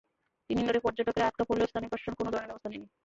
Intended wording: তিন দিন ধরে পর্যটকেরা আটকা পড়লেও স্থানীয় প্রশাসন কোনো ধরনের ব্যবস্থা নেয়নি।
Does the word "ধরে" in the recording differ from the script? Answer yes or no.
no